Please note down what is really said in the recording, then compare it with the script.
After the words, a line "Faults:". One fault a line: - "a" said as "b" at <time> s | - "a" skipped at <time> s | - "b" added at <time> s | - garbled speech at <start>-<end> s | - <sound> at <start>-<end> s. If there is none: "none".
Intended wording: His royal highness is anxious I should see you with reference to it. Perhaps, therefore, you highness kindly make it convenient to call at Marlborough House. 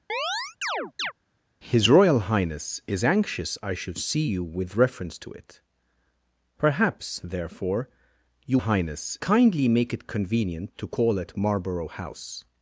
His royal highness is anxious I should see you with reference to it. Perhaps, therefore, you highness kindly make it convenient to call at Marlborough House.
Faults:
- chirp at 0.1-1.1 s